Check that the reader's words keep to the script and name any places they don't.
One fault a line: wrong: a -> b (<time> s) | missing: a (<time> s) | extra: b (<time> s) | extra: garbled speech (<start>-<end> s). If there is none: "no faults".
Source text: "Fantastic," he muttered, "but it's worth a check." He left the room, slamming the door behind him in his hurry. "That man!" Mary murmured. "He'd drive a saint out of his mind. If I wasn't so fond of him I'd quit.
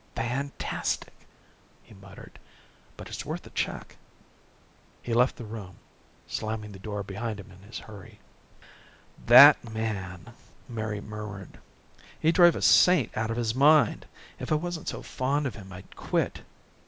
no faults